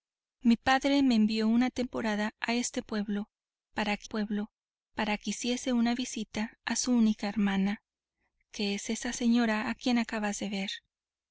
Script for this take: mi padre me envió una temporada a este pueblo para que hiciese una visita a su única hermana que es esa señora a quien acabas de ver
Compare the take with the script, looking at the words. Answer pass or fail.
fail